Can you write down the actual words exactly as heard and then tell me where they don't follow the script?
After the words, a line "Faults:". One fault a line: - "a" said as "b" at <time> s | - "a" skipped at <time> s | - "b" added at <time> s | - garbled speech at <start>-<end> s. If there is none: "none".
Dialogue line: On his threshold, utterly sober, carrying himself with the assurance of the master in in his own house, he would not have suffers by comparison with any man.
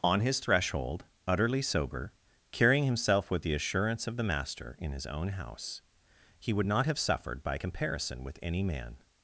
On his threshold, utterly sober, carrying himself with the assurance of the master in his own house, he would not have suffered by comparison with any man.
Faults:
- "in" skipped at 4.9 s
- "suffers" said as "suffered" at 7.0 s